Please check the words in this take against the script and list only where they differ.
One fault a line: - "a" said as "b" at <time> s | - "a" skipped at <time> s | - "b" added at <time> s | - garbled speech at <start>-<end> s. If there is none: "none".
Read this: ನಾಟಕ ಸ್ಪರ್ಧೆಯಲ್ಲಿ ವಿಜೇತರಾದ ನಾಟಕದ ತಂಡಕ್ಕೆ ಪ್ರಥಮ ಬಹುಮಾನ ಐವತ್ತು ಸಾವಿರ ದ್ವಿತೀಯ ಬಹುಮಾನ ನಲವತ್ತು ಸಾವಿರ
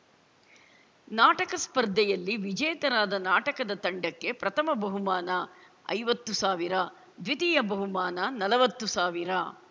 none